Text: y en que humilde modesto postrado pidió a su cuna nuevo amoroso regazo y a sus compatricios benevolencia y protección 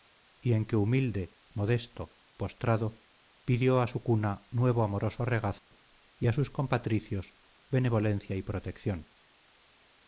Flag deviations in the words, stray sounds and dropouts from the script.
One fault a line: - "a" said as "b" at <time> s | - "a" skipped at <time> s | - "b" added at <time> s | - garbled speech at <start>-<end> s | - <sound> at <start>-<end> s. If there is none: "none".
- dropout at 5.6-5.7 s